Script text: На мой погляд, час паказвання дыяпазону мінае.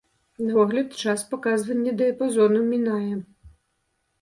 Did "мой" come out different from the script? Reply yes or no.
yes